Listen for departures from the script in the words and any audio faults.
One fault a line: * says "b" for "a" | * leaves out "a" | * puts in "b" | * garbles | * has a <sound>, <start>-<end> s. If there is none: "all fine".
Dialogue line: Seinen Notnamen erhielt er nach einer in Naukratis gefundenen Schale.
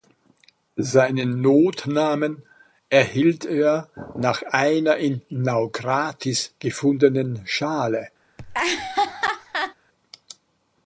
* has a laugh, 8.4-9.7 s